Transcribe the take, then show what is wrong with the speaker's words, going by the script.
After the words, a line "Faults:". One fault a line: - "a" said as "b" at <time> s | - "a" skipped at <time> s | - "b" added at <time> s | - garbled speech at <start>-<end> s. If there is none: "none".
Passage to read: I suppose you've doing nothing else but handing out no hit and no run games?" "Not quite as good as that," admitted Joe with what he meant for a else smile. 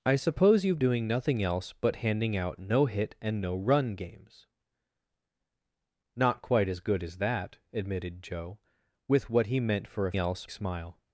I suppose you've doing nothing else but handing out no hit and no run games?" "Not quite as good as that," admitted Joe with what he meant for a else smile.
Faults:
none